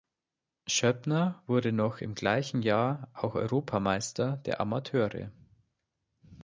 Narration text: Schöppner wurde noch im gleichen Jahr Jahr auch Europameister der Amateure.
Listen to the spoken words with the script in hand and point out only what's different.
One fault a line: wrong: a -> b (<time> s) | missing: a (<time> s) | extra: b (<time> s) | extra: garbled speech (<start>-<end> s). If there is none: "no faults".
missing: Jahr (3.1 s)